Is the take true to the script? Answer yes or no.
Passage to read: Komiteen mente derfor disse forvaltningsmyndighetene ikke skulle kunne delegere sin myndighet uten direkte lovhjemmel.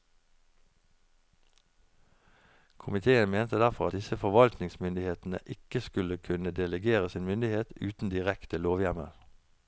yes